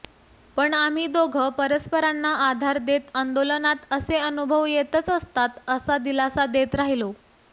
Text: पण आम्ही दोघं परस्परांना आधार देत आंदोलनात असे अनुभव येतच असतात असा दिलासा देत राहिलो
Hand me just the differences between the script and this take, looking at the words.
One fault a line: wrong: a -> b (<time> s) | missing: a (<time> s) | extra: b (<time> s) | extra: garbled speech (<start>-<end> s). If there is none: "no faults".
no faults